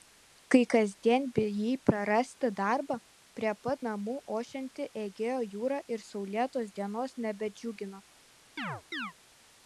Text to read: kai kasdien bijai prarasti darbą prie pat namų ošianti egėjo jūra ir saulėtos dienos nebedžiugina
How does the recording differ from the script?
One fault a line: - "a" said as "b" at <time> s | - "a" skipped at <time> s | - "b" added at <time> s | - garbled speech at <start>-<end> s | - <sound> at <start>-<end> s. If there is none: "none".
- chirp at 8.6-9.1 s